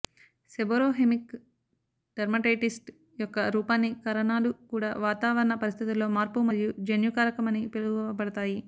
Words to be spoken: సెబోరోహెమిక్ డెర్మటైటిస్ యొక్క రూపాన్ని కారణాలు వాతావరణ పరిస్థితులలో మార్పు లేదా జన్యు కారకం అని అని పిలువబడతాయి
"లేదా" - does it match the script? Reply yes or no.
no